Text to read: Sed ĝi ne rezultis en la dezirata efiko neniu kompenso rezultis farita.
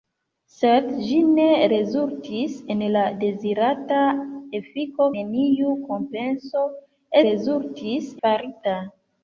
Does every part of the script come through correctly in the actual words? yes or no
yes